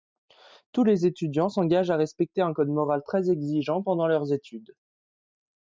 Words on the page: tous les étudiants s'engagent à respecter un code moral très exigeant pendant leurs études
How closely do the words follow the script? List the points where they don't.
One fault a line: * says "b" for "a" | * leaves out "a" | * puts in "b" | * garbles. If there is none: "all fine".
all fine